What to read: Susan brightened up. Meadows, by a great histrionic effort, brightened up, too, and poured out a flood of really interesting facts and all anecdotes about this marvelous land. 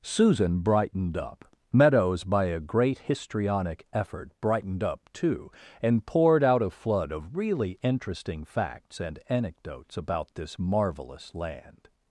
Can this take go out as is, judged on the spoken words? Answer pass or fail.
fail